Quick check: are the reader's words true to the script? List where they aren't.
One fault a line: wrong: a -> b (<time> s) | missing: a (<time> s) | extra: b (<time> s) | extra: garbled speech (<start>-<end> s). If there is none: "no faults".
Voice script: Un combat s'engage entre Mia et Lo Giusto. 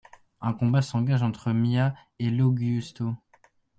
no faults